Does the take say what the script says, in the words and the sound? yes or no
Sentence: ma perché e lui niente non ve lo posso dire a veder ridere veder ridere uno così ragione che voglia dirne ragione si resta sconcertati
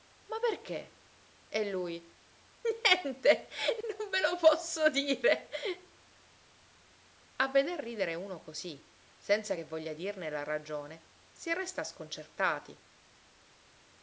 no